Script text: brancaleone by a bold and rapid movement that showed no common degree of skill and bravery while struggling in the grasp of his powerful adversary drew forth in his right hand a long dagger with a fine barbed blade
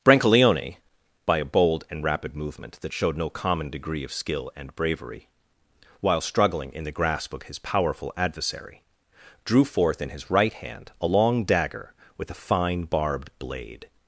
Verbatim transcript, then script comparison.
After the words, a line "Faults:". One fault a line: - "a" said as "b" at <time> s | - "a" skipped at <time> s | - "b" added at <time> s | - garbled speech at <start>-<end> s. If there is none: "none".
brancaleone by a bold and rapid movement that showed no common degree of skill and bravery while struggling in the grasp of his powerful adversary drew forth in his right hand a long dagger with a fine barbed blade
Faults:
none